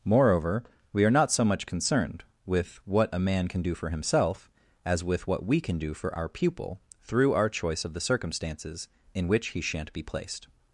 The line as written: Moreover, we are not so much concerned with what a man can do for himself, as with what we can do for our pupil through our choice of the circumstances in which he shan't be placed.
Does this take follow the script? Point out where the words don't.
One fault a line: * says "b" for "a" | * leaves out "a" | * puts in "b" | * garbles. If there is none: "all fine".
all fine